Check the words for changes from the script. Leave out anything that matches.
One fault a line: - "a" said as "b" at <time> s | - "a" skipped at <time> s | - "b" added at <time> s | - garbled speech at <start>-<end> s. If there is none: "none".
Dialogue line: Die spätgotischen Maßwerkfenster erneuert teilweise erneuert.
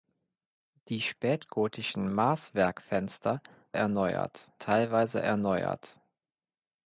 none